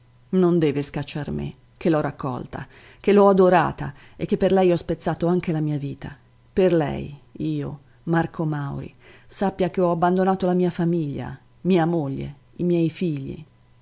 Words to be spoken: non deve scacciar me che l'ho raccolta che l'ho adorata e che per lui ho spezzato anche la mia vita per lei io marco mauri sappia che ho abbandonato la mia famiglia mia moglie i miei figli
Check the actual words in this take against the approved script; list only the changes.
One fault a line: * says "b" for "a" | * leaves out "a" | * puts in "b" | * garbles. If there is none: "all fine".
* says "lei" for "lui"